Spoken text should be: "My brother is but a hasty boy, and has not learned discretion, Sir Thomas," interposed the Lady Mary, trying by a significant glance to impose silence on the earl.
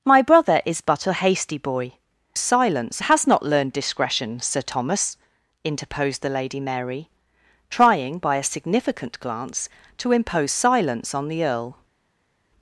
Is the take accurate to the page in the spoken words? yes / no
no